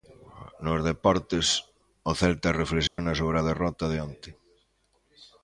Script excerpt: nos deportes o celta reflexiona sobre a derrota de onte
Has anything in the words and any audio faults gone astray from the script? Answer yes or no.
yes